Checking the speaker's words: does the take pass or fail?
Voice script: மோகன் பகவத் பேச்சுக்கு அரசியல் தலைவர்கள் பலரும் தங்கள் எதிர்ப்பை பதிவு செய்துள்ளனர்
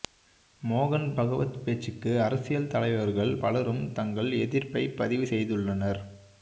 pass